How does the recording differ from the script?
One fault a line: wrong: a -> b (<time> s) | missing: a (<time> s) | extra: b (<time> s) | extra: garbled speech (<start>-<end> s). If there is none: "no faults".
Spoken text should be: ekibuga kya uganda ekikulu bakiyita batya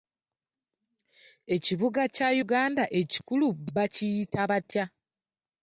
no faults